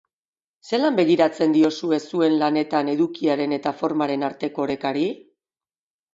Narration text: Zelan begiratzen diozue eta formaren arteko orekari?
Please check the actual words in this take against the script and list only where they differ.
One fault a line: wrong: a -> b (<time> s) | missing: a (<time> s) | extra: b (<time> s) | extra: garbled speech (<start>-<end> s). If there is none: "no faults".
extra: zuen lanetan edukiaren (2.1 s)